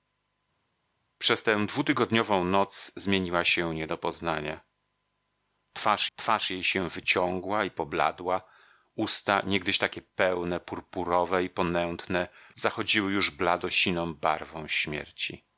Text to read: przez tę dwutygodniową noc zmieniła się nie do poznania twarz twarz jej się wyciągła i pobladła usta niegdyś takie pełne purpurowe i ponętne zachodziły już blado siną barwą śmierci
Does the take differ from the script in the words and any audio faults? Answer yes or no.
no